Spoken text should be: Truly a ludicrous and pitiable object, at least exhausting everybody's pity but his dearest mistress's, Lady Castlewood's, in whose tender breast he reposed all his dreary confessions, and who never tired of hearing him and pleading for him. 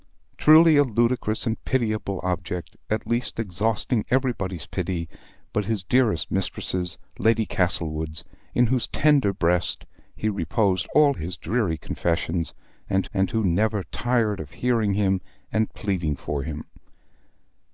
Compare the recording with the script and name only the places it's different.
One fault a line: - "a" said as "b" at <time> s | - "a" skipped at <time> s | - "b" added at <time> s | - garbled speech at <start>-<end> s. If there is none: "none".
- "and" added at 13.1 s